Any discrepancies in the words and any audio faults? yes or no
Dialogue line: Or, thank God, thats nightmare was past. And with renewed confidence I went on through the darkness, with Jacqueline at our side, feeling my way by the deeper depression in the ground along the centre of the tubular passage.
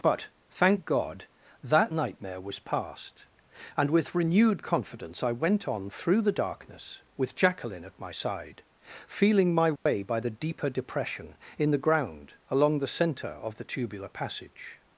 yes